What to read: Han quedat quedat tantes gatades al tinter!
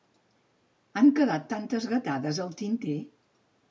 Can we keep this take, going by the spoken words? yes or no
no